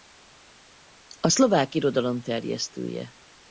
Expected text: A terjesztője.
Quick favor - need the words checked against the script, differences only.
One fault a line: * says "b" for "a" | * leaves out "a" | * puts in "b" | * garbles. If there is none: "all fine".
* puts in "szlovák irodalom"